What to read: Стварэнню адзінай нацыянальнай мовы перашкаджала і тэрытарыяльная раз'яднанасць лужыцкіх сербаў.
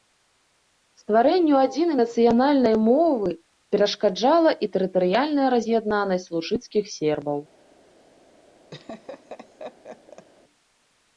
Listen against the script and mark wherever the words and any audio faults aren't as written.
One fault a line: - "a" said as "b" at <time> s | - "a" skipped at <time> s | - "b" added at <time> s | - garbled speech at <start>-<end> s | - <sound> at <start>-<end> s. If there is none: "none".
- laugh at 8.7-10.3 s